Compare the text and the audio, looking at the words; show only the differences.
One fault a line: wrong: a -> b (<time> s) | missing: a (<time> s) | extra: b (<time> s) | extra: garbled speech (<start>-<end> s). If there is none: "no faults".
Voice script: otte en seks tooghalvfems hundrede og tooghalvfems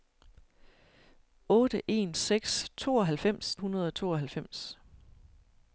no faults